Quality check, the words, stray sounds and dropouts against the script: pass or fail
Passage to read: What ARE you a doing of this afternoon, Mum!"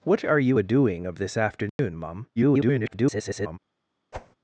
fail